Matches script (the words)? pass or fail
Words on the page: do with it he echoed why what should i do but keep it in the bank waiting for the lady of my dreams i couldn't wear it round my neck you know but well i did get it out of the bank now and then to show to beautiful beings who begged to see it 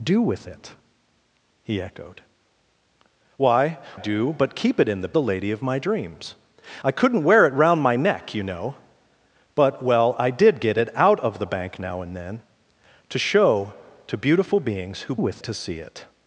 fail